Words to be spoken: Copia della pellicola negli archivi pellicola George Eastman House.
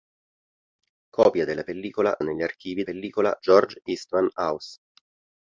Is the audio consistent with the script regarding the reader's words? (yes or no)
yes